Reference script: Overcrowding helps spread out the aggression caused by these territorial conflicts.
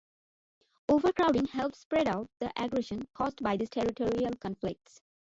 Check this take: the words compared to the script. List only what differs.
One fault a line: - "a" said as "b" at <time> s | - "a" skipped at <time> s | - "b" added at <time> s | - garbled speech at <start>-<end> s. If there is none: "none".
none